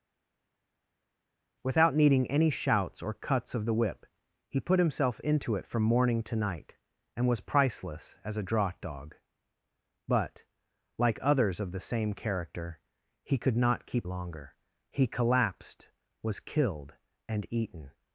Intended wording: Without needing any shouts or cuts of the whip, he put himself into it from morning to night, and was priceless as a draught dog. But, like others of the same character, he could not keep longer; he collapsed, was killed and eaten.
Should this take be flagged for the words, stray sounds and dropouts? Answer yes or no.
no